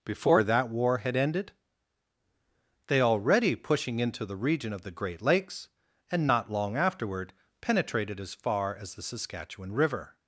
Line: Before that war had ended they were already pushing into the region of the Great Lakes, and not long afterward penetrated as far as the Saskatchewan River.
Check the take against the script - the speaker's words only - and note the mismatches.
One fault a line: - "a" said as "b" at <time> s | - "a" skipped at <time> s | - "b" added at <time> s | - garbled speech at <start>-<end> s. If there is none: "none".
- "were" skipped at 3.0 s